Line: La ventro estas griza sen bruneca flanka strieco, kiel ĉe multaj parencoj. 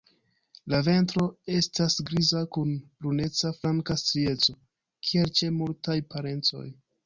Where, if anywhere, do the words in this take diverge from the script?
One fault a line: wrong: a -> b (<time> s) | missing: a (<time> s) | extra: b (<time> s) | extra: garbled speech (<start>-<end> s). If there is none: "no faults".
wrong: sen -> kun (2.6 s)